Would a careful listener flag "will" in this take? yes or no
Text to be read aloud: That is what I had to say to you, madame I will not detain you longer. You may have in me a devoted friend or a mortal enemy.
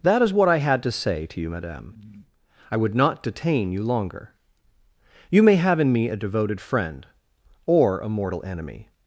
yes